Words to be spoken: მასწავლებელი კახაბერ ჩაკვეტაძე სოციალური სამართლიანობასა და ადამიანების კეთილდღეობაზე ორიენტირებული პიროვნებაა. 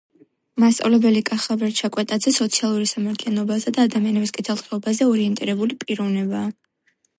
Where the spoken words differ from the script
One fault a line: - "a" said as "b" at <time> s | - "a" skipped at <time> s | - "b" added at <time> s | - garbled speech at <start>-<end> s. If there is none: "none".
none